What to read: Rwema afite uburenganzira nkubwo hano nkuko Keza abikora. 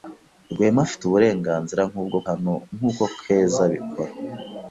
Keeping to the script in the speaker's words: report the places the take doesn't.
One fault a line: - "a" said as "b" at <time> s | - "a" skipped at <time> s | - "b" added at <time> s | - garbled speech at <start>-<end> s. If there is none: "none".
none